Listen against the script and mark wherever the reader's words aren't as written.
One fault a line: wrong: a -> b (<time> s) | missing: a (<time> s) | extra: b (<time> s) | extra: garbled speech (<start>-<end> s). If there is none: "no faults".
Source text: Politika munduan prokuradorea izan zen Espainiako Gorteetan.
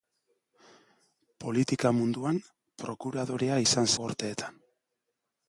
missing: zen Espainiako (3.9 s)